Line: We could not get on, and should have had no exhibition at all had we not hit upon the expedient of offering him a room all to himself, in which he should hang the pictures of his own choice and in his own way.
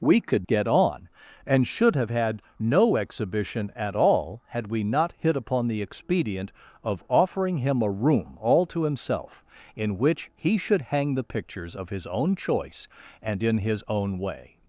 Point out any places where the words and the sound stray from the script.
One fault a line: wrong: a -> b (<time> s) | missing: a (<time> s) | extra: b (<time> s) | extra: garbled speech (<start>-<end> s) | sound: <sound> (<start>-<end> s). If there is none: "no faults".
missing: not (0.5 s)